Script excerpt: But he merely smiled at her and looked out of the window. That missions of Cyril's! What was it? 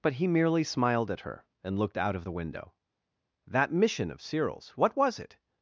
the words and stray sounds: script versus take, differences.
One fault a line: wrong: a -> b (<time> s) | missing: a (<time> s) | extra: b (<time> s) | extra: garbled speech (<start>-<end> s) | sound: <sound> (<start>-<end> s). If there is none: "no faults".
wrong: missions -> mission (3.7 s)